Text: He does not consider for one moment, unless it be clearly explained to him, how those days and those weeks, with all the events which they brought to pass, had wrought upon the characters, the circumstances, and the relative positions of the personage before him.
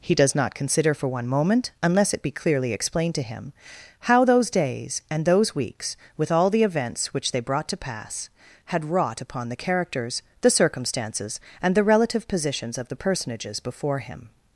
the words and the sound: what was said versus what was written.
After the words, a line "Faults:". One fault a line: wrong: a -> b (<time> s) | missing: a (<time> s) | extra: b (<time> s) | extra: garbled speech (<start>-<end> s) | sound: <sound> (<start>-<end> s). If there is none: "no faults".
He does not consider for one moment, unless it be clearly explained to him, how those days and those weeks, with all the events which they brought to pass, had wrought upon the characters, the circumstances, and the relative positions of the personages before him.
Faults:
wrong: personage -> personages (12.9 s)